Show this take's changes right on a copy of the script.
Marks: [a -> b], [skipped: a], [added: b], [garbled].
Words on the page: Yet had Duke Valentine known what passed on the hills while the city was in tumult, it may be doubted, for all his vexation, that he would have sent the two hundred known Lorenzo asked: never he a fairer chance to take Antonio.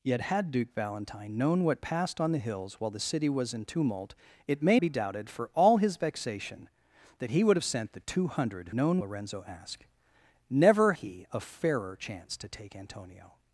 Yet had Duke Valentine known what passed on the hills while the city was in tumult, it may be doubted, for all his vexation, that he would have sent the two hundred known Lorenzo asked: never he a fairer chance to take Antonio.